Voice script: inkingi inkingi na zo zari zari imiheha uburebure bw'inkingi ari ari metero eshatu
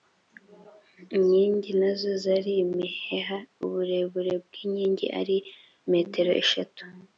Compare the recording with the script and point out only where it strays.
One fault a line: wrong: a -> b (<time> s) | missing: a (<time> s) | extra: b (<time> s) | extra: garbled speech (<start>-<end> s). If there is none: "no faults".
missing: inkingi (1.7 s)
missing: zari (2.5 s)
missing: ari (5.4 s)